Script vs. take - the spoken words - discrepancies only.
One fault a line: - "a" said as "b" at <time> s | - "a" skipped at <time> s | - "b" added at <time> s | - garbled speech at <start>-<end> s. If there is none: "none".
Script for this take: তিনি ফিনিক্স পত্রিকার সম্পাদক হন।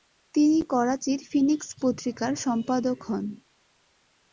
- "করাচির" added at 0.7 s